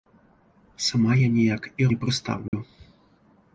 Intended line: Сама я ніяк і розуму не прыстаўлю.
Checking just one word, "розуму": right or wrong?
wrong